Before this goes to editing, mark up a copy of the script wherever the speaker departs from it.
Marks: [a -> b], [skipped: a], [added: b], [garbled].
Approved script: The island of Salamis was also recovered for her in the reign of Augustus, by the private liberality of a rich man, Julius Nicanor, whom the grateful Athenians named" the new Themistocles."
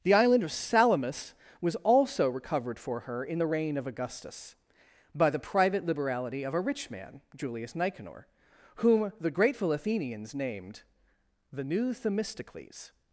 The island of Salamis was also recovered for her in the reign of Augustus, by the private liberality of a rich man, Julius Nicanor, whom the grateful Athenians named" the new Themistocles."